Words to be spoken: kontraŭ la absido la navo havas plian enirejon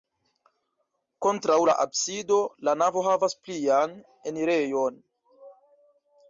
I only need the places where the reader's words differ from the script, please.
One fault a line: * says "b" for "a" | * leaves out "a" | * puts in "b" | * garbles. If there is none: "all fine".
all fine